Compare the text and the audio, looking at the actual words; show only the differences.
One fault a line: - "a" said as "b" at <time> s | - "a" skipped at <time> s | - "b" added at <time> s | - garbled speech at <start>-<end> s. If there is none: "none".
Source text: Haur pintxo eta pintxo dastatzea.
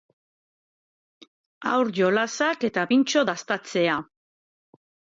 - "pintxo" said as "jolasak" at 2.0 s